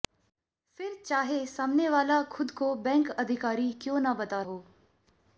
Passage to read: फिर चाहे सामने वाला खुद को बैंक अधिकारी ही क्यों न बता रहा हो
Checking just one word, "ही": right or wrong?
wrong